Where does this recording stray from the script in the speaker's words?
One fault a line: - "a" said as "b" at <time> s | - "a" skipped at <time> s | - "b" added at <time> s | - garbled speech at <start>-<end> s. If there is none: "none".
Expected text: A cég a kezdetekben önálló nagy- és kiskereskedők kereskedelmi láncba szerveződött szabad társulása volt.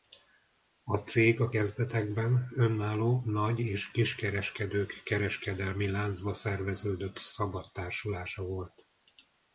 none